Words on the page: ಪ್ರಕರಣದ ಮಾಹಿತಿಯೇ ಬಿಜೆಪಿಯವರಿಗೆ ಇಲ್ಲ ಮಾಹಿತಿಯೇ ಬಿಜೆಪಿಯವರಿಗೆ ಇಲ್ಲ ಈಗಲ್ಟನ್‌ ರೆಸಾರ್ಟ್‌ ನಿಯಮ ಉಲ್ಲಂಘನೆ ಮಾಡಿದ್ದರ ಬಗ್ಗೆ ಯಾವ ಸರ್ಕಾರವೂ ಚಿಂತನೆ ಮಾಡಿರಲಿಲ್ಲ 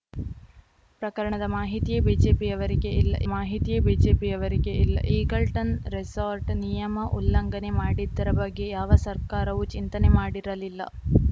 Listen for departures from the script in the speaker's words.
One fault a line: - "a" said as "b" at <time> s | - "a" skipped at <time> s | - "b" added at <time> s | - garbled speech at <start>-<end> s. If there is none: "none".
none